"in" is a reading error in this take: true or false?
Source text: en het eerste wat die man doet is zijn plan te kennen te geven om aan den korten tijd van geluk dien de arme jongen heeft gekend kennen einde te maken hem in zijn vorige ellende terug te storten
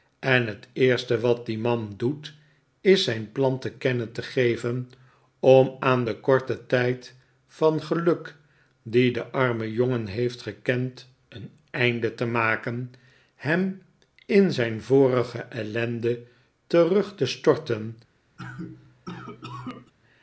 false